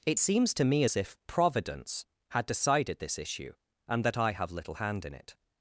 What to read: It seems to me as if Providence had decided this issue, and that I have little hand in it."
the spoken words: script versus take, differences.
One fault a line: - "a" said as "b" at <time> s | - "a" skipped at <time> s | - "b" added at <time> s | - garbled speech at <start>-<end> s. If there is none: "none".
none